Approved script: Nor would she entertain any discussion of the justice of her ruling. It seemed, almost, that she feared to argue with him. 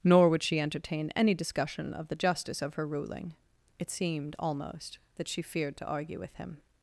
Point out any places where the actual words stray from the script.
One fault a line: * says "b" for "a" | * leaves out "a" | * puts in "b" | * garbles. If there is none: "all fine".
all fine